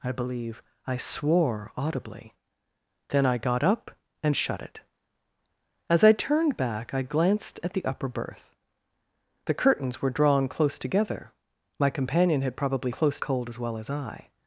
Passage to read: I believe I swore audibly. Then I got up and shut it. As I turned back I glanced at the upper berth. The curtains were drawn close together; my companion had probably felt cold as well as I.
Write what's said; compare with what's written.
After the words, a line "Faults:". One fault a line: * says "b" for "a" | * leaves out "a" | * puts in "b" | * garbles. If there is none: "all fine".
I believe I swore audibly. Then I got up and shut it. As I turned back I glanced at the upper berth. The curtains were drawn close together; my companion had probably close cold as well as I.
Faults:
* says "close" for "felt"